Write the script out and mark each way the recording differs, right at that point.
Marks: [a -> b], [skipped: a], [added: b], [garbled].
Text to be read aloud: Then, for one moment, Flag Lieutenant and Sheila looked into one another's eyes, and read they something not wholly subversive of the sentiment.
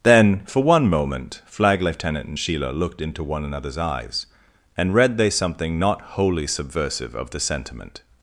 Then, for one moment, Flag Lieutenant and Sheila looked into one another's eyes, and read they something not wholly subversive of the sentiment.